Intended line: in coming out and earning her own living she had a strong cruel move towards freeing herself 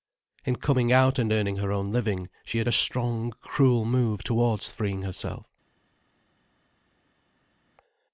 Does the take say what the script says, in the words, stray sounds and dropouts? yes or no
yes